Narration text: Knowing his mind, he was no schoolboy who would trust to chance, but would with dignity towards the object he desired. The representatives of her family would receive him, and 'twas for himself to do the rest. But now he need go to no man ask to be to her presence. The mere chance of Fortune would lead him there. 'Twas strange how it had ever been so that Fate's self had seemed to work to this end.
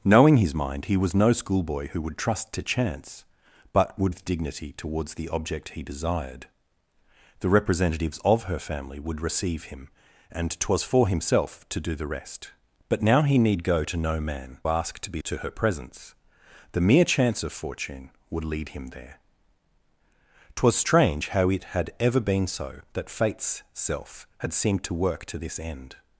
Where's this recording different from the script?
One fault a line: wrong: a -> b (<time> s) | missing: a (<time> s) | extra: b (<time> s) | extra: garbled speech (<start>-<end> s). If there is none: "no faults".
no faults